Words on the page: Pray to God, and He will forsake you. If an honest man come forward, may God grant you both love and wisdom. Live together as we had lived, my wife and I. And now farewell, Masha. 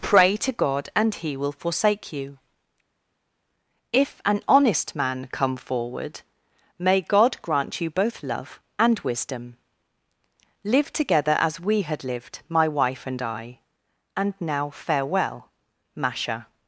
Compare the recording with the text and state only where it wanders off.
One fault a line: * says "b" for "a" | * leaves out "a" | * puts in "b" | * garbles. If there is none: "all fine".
all fine